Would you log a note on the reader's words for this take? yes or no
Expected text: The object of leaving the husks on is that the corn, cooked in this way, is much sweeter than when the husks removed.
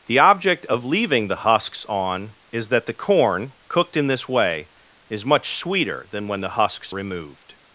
no